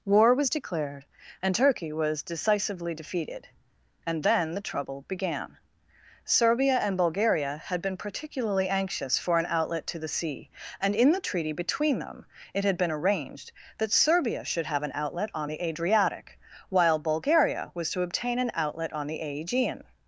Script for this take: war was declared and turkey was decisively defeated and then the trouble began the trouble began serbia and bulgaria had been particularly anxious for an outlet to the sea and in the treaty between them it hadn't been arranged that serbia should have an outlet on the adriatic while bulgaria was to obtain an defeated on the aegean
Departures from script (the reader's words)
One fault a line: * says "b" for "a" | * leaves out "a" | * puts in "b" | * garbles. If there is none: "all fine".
* leaves out "the trouble began"
* says "had" for "hadn't"
* says "outlet" for "defeated"